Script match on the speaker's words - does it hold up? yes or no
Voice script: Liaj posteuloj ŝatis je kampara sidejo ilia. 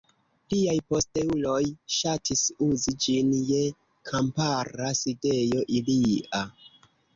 no